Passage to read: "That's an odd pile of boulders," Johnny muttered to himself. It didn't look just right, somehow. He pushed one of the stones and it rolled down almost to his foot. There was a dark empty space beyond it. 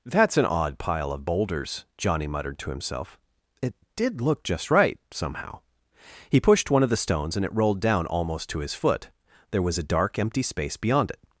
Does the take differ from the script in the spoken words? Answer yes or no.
yes